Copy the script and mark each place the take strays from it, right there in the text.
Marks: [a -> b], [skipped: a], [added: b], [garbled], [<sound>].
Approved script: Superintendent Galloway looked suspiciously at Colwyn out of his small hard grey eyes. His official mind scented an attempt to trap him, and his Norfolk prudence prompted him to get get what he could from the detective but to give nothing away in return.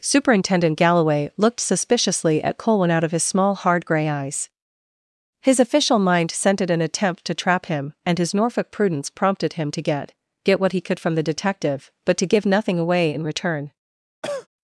Superintendent Galloway looked suspiciously at Colwyn out of his small hard grey eyes. His official mind scented an attempt to trap him, and his Norfolk prudence prompted him to get get what he could from the detective but to give nothing away in return. [cough]